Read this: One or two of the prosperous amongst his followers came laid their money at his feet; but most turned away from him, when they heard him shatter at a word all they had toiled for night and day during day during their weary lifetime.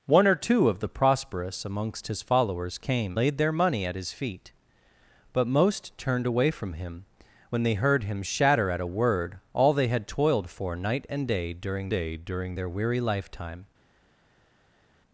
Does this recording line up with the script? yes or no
yes